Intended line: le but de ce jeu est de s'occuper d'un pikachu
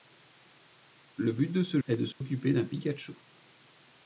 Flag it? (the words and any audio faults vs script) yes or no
yes